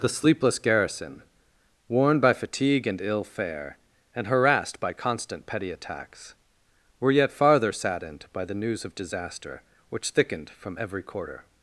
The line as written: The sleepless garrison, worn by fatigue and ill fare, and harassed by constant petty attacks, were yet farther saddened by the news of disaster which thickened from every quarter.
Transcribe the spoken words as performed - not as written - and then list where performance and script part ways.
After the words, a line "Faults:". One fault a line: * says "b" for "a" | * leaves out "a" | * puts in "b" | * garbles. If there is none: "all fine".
The sleepless garrison, worn by fatigue and ill fare, and harassed by constant petty attacks, were yet farther saddened by the news of disaster which thickened from every quarter.
Faults:
all fine